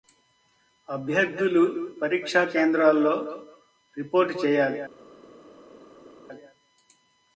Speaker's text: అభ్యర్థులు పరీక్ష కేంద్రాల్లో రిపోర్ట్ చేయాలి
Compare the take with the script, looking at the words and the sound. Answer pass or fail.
pass